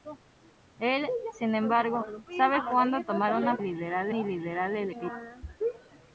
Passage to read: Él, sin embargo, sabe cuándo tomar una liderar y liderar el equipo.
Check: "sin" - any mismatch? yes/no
no